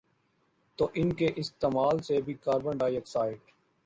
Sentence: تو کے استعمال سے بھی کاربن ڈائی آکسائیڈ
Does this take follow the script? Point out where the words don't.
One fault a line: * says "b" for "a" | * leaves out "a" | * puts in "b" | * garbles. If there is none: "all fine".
* puts in "ان"